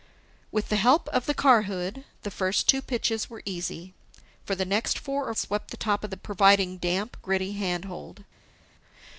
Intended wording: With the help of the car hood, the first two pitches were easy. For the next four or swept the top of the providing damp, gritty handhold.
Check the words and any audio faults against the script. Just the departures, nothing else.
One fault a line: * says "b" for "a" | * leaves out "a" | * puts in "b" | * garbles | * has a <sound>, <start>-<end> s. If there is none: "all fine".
all fine